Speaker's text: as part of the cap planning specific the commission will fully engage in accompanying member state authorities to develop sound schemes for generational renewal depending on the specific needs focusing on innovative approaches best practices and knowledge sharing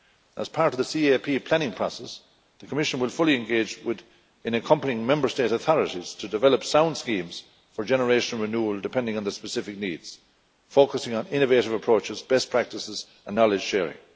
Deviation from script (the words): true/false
true